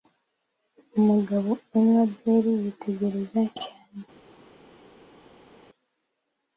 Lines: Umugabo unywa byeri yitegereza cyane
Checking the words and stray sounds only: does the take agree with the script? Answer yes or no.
yes